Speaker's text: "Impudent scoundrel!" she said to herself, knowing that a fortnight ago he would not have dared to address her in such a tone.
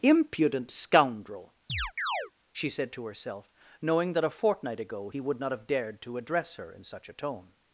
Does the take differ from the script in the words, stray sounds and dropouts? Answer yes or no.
yes